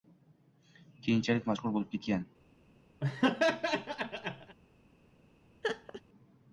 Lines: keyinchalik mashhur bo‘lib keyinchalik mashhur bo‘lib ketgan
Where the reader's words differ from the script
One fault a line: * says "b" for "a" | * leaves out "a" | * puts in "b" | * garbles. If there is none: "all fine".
* leaves out "keyinchalik mashhur bo‘lib"